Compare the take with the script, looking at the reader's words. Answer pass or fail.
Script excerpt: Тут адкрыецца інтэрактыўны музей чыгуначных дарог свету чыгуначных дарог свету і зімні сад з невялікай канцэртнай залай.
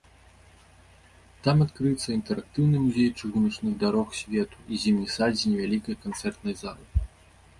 fail